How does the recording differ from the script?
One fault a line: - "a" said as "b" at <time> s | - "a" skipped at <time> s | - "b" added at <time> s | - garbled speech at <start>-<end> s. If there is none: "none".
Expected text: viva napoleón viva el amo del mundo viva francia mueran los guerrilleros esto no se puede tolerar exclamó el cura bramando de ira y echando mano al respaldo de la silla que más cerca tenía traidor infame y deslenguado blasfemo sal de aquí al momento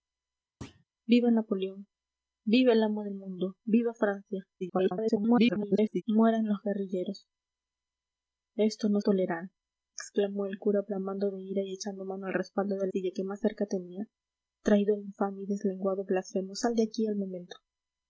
- garbled speech at 4.6-6.0 s
- "se puede" skipped at 9.0 s
- "la" skipped at 12.9 s